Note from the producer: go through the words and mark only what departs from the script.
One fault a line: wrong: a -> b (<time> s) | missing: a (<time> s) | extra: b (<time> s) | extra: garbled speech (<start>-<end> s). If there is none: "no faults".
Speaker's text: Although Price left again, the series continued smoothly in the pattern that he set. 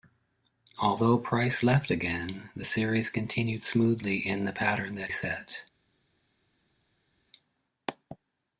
missing: he (5.1 s)